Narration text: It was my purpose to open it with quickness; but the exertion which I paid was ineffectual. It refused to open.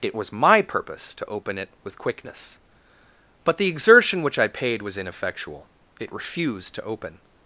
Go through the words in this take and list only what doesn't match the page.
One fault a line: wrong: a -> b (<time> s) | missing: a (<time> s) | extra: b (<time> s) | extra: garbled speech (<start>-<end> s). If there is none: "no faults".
no faults